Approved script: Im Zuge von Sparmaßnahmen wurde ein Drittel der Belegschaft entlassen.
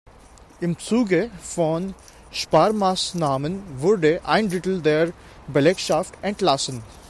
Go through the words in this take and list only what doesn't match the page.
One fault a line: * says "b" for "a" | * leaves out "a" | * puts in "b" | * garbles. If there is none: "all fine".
all fine